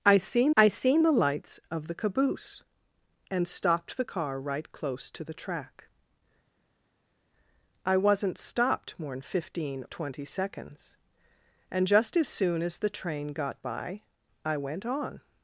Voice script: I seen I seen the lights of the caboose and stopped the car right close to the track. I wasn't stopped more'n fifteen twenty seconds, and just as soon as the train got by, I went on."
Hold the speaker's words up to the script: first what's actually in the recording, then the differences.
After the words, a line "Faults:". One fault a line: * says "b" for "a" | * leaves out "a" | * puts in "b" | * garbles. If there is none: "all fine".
I seen I seen the lights of the caboose and stopped the car right close to the track. I wasn't stopped more'n fifteen twenty seconds, and just as soon as the train got by, I went on."
Faults:
all fine